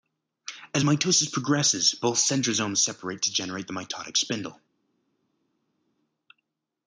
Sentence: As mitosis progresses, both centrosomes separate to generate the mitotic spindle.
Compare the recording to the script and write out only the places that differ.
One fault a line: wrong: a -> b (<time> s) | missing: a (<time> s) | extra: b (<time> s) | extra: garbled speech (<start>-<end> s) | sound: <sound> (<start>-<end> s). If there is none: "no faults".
no faults